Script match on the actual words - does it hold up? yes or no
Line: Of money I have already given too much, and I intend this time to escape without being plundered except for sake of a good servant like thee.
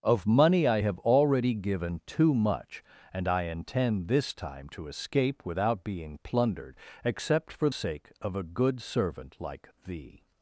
yes